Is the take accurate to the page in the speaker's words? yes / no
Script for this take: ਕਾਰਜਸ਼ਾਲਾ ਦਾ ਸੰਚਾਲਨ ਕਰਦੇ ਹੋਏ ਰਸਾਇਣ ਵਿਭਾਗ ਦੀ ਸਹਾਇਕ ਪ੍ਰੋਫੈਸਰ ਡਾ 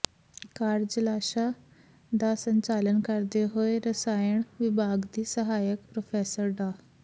yes